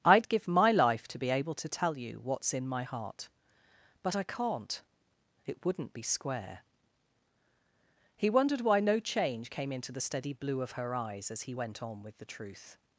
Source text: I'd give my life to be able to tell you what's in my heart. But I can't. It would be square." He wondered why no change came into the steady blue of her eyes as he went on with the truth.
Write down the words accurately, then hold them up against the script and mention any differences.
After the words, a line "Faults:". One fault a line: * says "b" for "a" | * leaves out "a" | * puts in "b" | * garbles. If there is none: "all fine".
I'd give my life to be able to tell you what's in my heart. But I can't. It wouldn't be square." He wondered why no change came into the steady blue of her eyes as he went on with the truth.
Faults:
* says "wouldn't" for "would"